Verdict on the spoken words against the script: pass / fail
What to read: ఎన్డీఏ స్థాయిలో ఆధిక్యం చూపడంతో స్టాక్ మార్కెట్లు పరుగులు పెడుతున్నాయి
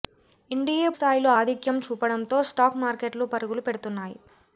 pass